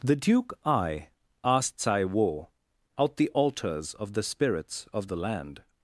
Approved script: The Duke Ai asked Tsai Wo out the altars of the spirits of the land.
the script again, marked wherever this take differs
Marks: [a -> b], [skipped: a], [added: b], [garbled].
The Duke Ai asked Tsai Wo out the altars of the spirits of the land.